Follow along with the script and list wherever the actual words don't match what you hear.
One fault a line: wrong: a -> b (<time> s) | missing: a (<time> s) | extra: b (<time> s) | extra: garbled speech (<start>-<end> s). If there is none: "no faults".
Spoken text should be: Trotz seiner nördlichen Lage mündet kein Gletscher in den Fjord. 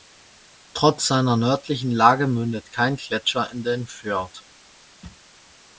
no faults